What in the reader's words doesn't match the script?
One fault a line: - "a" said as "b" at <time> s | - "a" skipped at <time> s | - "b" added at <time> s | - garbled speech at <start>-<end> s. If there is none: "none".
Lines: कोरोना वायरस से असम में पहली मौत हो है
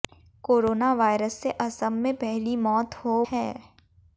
none